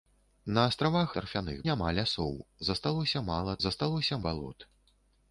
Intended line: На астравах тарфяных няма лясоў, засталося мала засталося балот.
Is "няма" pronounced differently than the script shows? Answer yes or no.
no